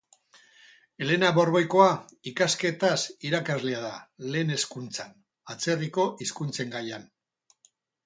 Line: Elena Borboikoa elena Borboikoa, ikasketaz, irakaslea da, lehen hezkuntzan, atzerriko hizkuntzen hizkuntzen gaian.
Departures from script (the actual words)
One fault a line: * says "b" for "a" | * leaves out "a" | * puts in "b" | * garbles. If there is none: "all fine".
* leaves out "elena Borboikoa"
* leaves out "hizkuntzen"